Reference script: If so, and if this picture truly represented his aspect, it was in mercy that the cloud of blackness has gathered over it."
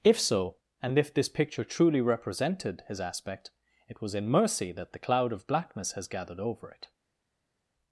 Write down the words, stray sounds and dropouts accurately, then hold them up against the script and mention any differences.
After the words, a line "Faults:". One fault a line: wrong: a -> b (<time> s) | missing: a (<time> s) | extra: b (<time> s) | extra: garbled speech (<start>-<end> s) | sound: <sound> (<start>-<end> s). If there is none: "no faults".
If so, and if this picture truly represented his aspect, it was in mercy that the cloud of blackness has gathered over it."
Faults:
no faults